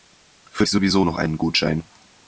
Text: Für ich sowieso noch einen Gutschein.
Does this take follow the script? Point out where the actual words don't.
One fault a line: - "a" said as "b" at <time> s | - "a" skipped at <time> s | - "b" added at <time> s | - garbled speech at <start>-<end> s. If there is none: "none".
none